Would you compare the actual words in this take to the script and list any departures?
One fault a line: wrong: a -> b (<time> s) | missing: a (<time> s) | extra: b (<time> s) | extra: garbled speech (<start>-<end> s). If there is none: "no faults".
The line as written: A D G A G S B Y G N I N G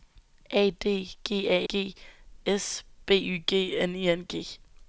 no faults